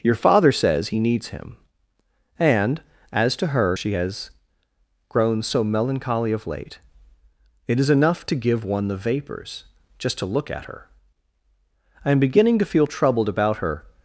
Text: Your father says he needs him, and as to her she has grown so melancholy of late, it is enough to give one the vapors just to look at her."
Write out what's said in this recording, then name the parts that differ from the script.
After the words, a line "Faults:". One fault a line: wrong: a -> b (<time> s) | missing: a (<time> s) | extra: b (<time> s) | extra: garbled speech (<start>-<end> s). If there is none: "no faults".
Your father says he needs him, and as to her she has grown so melancholy of late, it is enough to give one the vapors just to look at her." "I am beginning to feel troubled about her
Faults:
extra: I am beginning to feel troubled about her (12.0 s)